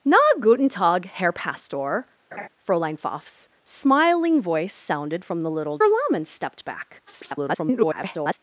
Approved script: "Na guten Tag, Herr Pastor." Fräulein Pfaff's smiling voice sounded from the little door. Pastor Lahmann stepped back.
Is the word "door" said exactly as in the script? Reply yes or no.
no